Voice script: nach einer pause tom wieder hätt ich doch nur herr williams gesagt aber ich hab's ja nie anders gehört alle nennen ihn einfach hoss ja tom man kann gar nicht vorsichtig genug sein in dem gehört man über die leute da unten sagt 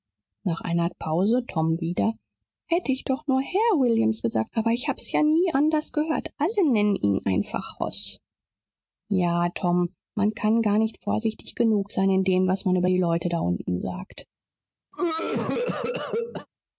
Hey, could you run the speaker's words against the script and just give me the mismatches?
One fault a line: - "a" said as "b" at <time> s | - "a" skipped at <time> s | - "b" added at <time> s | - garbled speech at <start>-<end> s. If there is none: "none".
- "gehört" said as "was" at 12.5 s